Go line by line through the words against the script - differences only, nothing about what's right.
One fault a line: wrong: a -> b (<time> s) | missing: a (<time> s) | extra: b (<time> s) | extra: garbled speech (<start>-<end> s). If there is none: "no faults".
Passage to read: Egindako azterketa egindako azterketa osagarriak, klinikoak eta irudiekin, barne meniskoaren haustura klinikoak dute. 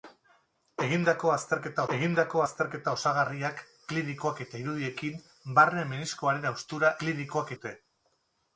no faults